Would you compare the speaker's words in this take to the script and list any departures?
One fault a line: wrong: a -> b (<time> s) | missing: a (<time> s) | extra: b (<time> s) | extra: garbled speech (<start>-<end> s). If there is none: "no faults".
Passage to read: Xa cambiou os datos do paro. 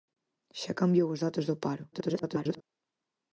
extra: garbled speech (1.9-2.6 s)